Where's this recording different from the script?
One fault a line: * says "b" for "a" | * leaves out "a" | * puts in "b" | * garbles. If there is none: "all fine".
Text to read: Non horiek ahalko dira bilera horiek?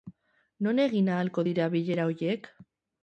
* says "egin" for "horiek"